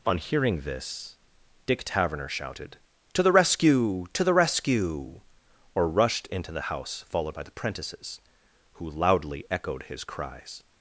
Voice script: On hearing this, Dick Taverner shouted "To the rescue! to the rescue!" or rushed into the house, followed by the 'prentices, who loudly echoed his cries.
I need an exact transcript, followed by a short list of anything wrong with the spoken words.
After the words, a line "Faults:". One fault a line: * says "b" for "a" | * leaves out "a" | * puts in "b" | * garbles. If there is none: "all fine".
On hearing this, Dick Taverner shouted "To the rescue! to the rescue!" or rushed into the house, followed by the 'prentices, who loudly echoed his cries.
Faults:
all fine